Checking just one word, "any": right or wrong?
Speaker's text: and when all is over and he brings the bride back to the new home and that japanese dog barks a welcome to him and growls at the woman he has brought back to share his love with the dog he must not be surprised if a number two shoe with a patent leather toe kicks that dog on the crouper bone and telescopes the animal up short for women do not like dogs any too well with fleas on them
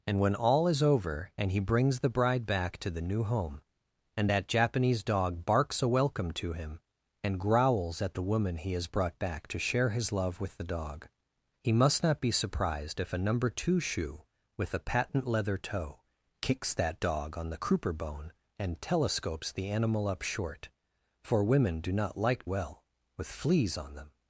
wrong